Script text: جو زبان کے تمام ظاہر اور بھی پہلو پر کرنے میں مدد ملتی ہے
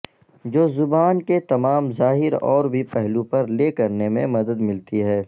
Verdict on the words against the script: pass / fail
fail